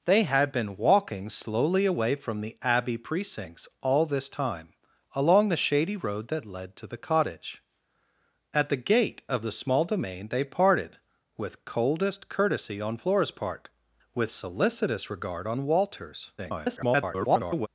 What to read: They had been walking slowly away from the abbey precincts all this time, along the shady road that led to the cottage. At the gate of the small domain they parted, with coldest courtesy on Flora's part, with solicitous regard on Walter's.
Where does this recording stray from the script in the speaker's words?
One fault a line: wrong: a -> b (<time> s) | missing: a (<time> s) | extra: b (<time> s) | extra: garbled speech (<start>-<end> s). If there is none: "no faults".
extra: garbled speech (16.4-17.7 s)